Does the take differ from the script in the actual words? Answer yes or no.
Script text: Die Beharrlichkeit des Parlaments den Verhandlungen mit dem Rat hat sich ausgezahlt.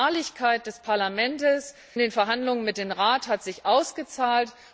no